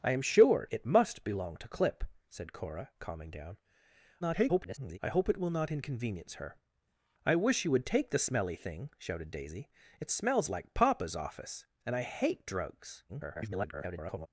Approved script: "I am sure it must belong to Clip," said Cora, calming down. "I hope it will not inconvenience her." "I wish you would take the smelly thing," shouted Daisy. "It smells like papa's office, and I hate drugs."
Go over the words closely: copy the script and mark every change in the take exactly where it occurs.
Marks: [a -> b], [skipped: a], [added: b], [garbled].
"I am sure it must belong to Clip," said Cora, calming down. [garbled] "I hope it will not inconvenience her." "I wish you would take the smelly thing," shouted Daisy. "It smells like papa's office, and I hate drugs." [garbled]